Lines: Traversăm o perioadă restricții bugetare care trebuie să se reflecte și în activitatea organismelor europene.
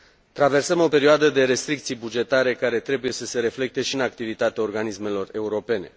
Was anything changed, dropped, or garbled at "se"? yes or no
no